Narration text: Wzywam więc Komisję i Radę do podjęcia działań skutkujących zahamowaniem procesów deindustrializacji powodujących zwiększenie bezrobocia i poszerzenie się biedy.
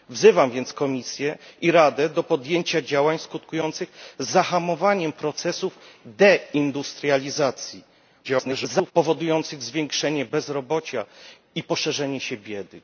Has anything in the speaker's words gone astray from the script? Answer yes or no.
yes